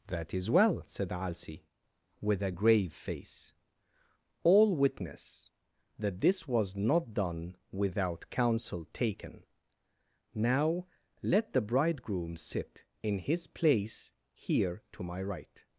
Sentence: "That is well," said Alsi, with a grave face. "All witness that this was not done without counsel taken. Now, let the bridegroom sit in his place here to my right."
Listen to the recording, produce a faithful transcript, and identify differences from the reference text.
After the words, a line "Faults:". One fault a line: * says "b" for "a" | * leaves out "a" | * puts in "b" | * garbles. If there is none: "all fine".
"That is well," said Alsi, with a grave face. "All witness that this was not done without counsel taken. Now, let the bridegroom sit in his place here to my right."
Faults:
all fine